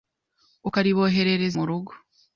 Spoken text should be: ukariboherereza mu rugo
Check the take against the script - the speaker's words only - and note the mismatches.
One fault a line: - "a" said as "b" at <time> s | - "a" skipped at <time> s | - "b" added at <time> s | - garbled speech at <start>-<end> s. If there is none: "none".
none